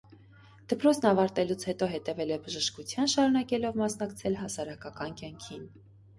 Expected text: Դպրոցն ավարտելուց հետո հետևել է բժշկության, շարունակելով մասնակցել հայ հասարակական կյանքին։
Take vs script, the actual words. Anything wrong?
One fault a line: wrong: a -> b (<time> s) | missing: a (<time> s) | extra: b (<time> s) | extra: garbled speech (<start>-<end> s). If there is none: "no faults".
missing: հայ (4.4 s)